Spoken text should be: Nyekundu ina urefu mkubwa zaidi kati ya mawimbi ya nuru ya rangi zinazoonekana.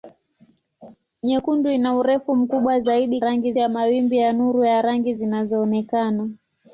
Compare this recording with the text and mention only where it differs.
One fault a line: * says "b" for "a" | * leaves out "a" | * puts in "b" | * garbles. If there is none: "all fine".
* says "rangi" for "kati"